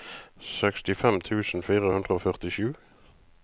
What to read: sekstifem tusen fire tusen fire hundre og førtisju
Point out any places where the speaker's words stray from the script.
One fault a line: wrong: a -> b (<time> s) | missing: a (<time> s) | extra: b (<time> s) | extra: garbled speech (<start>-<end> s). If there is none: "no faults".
missing: tusen fire (1.9 s)